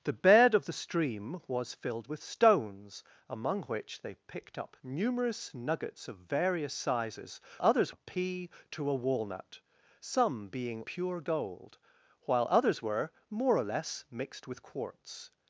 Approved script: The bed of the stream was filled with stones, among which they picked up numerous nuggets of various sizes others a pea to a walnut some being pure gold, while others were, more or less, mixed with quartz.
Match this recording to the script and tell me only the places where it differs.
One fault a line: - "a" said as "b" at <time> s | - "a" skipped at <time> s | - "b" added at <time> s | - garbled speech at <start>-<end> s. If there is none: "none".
none